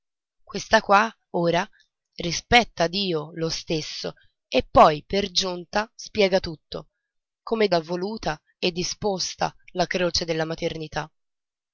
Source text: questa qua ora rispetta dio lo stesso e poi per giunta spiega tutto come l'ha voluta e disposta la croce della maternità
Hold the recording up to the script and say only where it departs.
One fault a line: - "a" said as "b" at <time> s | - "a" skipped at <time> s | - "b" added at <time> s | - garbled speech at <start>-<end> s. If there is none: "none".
none